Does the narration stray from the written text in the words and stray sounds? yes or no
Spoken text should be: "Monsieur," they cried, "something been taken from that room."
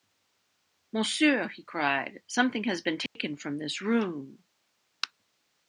yes